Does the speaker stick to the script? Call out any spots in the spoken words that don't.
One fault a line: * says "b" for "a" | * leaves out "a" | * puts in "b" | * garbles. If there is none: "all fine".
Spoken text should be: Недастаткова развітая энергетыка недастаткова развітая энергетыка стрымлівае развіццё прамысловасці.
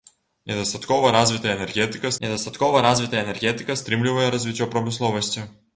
all fine